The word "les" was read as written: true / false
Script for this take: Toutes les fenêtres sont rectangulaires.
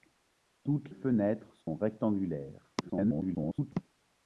false